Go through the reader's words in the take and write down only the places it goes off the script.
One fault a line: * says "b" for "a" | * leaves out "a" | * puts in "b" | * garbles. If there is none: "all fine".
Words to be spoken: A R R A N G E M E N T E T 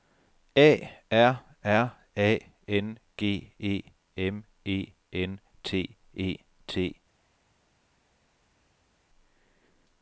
all fine